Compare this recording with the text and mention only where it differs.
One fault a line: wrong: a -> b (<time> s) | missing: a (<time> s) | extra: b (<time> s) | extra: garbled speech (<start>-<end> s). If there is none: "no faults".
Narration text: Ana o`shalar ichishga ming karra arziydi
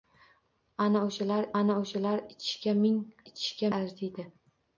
extra: ana o`shalar (1.6 s)
wrong: karra -> ichishga (3.3 s)